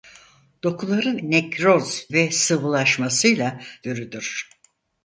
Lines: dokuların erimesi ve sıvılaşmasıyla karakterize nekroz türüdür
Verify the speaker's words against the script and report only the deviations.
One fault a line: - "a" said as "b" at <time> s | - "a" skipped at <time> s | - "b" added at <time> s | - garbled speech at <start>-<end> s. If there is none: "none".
- "erimesi" said as "nekroz" at 1.2 s
- "karakterize nekroz" skipped at 3.6 s